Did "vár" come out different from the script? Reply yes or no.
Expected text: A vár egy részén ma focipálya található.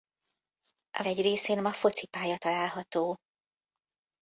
yes